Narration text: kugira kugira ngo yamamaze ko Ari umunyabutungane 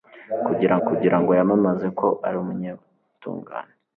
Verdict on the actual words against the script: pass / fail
pass